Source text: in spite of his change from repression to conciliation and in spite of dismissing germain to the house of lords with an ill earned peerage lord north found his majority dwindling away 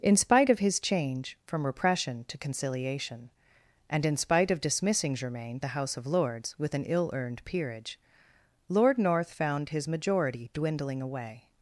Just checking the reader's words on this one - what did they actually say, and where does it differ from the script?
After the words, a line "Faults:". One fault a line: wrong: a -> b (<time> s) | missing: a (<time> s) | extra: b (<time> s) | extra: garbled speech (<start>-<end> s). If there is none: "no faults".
in spite of his change from repression to conciliation and in spite of dismissing germain the house of lords with an ill earned peerage lord north found his majority dwindling away
Faults:
missing: to (5.6 s)